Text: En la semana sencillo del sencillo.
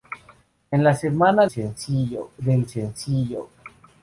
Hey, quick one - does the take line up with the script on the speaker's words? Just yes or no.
yes